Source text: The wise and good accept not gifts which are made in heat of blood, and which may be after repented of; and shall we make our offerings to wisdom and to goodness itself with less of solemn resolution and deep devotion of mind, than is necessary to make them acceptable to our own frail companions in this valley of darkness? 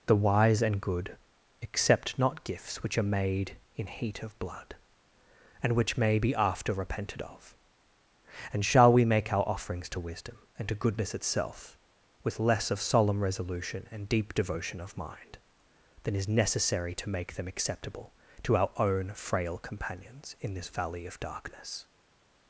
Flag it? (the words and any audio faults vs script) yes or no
no